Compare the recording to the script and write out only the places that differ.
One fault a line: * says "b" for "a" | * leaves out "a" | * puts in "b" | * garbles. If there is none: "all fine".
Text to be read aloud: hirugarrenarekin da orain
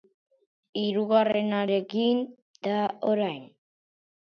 all fine